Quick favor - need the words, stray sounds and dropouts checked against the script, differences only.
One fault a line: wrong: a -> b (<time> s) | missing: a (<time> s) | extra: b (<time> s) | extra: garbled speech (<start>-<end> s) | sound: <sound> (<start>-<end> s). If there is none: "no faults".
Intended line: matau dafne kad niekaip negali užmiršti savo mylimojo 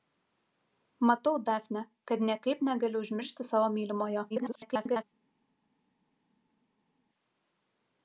extra: garbled speech (4.3-5.0 s)